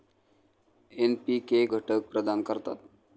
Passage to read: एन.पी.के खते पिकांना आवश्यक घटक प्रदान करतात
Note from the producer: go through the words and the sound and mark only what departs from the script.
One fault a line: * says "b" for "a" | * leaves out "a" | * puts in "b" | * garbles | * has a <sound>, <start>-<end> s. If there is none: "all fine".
* leaves out "खते पिकांना आवश्यक"